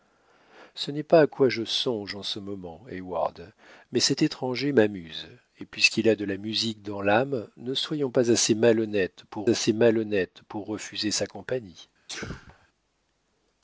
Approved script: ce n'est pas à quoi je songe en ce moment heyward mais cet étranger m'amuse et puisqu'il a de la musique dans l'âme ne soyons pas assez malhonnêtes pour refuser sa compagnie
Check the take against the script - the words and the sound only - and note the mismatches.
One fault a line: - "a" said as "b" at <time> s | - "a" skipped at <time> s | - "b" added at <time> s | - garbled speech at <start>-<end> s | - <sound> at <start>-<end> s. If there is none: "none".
- "assez malhonnêtes pour" added at 9.5 s
- sneeze at 12.1-12.7 s